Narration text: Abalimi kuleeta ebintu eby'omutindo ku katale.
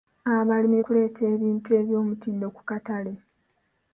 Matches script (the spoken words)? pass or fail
pass